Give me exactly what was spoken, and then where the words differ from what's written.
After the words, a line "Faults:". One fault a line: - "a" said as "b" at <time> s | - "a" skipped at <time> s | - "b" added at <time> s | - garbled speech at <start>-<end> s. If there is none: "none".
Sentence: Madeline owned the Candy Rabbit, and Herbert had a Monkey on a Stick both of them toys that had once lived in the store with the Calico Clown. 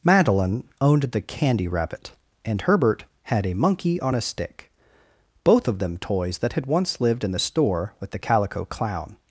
Madeline owned the Candy Rabbit, and Herbert had a Monkey on a Stick both of them toys that had once lived in the store with the Calico Clown.
Faults:
none